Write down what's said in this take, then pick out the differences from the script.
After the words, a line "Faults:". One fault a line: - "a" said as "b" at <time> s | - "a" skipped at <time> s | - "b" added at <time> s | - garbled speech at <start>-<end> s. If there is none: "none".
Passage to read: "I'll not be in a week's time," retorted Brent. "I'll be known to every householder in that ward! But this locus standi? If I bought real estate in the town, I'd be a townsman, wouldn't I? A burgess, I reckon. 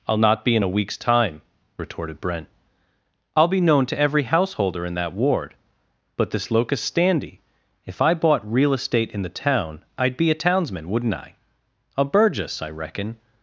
"I'll not be in a week's time," retorted Brent. "I'll be known to every householder in that ward! But this locus standi? If I bought real estate in the town, I'd be a townsman, wouldn't I? A burgess, I reckon.
Faults:
none